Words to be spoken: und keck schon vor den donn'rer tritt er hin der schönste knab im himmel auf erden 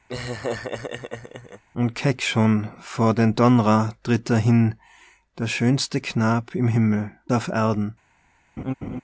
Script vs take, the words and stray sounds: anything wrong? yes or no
yes